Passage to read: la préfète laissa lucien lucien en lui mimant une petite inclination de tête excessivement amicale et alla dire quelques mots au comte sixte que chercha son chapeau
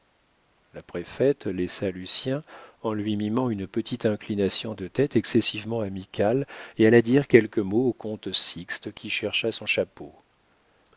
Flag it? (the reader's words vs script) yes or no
yes